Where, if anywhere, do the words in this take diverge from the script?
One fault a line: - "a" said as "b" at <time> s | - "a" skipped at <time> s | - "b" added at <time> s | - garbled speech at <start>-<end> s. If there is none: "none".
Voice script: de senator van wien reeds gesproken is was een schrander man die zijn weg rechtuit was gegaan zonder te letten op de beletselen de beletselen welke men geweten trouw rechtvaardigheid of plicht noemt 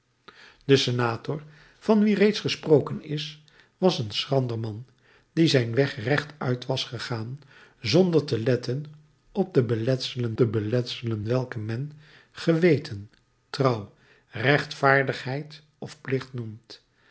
none